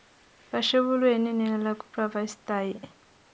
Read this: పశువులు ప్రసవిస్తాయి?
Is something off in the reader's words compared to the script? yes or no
yes